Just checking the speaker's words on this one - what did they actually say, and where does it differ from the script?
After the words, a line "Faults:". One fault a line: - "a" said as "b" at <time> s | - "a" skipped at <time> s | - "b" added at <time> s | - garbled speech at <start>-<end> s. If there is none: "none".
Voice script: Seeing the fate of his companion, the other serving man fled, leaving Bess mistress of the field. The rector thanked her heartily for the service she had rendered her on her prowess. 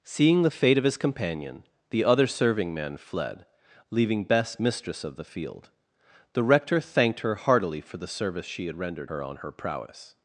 Seeing the fate of his companion, the other serving man fled, leaving Bess mistress of the field. The rector thanked her heartily for the service she had rendered her on her prowess.
Faults:
none